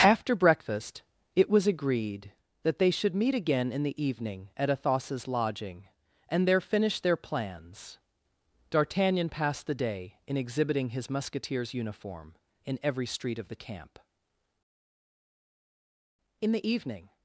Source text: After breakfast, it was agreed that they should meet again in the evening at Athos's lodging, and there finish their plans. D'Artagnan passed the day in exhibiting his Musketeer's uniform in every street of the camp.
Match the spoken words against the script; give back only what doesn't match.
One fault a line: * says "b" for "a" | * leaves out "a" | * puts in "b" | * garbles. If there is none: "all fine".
* puts in "In the evening"